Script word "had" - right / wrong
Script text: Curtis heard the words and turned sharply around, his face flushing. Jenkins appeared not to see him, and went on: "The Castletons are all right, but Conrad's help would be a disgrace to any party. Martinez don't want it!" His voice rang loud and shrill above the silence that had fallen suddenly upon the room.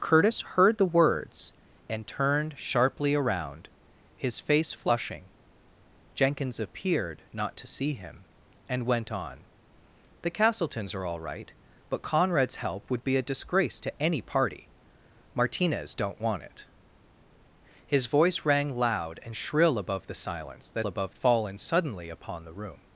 wrong